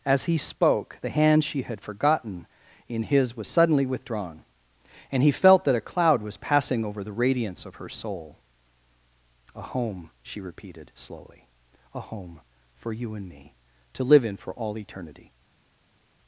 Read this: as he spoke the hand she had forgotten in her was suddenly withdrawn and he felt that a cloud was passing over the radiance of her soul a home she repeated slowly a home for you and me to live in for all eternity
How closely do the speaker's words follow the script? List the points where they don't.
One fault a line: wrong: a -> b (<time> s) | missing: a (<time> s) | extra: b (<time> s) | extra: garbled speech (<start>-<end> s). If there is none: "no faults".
wrong: her -> his (3.0 s)